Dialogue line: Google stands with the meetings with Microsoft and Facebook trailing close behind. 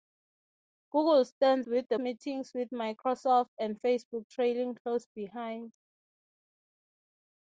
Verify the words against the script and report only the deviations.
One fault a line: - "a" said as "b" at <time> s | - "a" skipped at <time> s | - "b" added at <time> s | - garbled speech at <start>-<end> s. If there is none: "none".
none